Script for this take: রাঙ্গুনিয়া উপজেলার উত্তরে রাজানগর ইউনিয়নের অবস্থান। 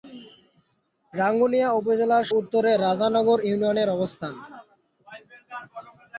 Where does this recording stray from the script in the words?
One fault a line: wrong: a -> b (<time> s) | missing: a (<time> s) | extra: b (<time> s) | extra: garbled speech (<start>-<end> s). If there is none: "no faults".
no faults